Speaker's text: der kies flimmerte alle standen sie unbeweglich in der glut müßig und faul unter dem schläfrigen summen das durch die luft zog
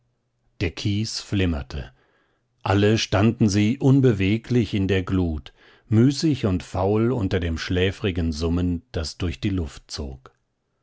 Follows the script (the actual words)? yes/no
yes